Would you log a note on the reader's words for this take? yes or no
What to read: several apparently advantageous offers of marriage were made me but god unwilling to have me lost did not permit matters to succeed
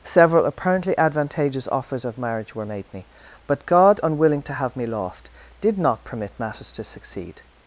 no